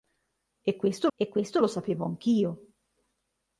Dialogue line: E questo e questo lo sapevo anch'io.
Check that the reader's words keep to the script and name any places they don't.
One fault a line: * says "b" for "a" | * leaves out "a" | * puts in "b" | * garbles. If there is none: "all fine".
all fine